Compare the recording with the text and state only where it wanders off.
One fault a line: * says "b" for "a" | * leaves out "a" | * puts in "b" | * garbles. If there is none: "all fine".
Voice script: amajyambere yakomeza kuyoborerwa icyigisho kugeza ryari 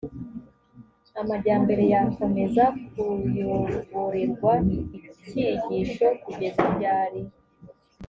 all fine